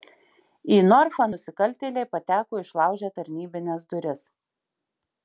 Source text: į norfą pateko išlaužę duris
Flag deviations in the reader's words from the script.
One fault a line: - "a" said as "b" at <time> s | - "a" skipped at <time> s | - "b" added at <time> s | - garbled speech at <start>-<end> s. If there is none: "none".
- "nusikaltėliai" added at 1.3 s
- "tarnybines" added at 3.2 s